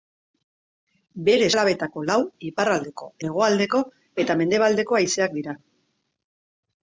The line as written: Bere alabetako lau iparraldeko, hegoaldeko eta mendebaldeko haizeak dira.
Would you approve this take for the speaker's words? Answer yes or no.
yes